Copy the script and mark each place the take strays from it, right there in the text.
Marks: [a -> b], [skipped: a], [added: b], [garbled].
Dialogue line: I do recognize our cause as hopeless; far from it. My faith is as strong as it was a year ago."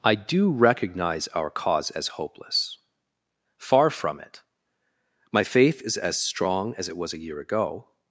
I do recognize our cause as hopeless; far from it. My faith is as strong as it was a year ago."